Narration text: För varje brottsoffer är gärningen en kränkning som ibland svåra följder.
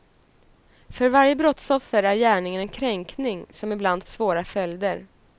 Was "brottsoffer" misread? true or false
false